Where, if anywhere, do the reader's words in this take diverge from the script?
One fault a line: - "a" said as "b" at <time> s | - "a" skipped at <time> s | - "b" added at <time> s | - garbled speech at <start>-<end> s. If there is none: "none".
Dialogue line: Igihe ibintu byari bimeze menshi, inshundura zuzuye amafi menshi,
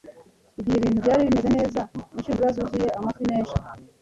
- "menshi" said as "neza" at 1.6 s